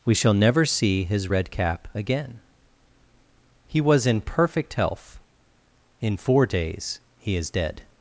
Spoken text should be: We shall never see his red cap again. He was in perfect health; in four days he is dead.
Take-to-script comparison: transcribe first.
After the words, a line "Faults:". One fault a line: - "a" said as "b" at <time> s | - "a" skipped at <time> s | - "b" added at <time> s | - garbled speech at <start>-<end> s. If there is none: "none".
We shall never see his red cap again. He was in perfect health; in four days he is dead.
Faults:
none